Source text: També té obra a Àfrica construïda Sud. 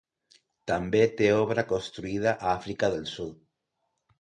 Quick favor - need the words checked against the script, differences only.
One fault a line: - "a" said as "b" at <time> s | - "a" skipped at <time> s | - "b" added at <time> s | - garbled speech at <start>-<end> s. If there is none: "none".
- "construïda" added at 1.7 s
- "construïda" said as "del" at 3.0 s